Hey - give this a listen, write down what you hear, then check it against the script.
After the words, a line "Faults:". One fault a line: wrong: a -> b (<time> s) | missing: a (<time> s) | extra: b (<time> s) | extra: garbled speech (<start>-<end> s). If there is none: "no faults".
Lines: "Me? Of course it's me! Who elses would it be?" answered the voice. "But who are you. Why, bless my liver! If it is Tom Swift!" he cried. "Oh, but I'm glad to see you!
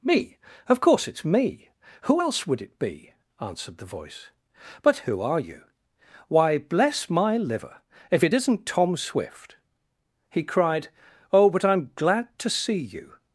"Me? Of course it's me! Who else would it be?" answered the voice. "But who are you. Why, bless my liver! If it isn't Tom Swift!" he cried. "Oh, but I'm glad to see you!
Faults:
wrong: elses -> else (2.2 s)
wrong: is -> isn't (8.3 s)